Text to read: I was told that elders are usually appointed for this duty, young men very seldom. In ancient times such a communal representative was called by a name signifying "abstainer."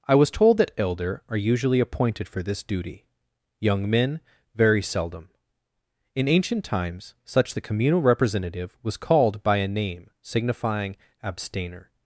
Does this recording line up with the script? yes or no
no